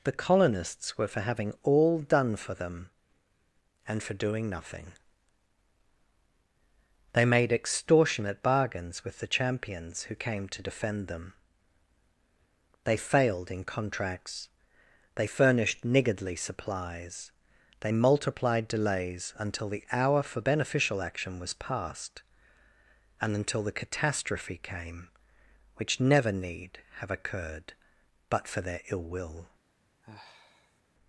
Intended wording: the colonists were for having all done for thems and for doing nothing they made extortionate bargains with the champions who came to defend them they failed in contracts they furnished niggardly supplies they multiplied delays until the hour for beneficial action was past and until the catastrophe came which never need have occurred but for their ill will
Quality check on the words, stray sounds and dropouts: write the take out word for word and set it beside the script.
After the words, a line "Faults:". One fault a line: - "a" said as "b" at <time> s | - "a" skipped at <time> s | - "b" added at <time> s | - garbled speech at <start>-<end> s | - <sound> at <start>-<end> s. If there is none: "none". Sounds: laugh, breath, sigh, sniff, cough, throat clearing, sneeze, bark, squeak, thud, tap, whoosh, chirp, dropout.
the colonists were for having all done for them and for doing nothing they made extortionate bargains with the champions who came to defend them they failed in contracts they furnished niggardly supplies they multiplied delays until the hour for beneficial action was past and until the catastrophe came which never need have occurred but for their ill will
Faults:
- "thems" said as "them" at 2.5 s
- sigh at 30.0-30.8 s